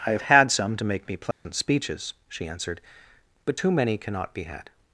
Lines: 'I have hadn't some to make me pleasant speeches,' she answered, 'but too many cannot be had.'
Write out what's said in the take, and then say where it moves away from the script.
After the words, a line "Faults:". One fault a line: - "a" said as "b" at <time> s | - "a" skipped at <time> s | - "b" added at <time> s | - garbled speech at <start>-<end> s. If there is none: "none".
'I have had some to make me pleasant speeches,' she answered, 'but too many cannot be had.'
Faults:
- "hadn't" said as "had" at 0.2 s